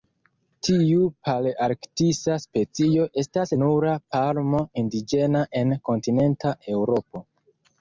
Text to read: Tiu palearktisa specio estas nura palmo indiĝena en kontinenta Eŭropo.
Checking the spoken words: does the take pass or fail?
pass